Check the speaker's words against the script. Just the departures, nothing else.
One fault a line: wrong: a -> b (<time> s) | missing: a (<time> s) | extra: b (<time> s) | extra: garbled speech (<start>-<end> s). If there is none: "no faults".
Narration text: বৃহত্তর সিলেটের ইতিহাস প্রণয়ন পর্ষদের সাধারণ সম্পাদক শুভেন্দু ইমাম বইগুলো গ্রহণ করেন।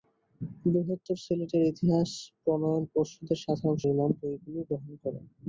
missing: সম্পাদক শুভেন্দু (3.8 s)